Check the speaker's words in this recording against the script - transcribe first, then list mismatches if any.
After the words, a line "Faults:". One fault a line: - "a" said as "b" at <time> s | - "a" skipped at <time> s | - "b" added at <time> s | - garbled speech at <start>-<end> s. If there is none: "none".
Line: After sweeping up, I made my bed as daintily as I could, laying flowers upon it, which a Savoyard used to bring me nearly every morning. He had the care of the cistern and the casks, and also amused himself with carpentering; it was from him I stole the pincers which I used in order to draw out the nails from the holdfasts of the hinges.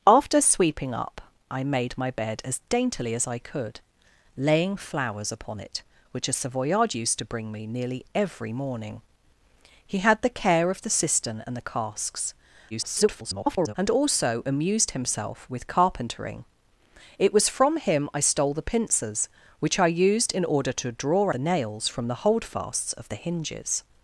After sweeping up, I made my bed as daintily as I could, laying flowers upon it, which a Savoyard used to bring me nearly every morning. He had the care of the cistern and the casks, [garbled] and also amused himself with carpentering; it was from him I stole the pincers which I used in order to draw the nails from the holdfasts of the hinges.
Faults:
- garbled speech at 12.7-13.7 s
- "out" skipped at 21.3 s